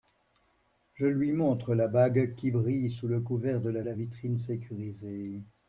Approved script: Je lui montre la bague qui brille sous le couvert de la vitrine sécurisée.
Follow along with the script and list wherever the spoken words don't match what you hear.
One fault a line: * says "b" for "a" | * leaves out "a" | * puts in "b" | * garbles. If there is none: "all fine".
* puts in "la"